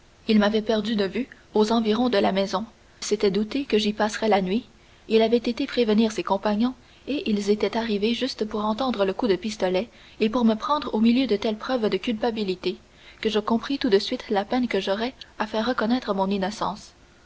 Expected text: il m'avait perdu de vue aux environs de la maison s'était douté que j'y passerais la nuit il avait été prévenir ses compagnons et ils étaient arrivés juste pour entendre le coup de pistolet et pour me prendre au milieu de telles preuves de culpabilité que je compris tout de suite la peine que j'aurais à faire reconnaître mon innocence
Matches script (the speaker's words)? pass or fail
pass